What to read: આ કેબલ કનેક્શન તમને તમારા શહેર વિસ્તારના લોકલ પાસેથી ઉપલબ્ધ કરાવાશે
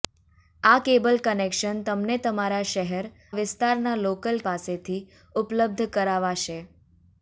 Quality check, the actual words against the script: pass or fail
pass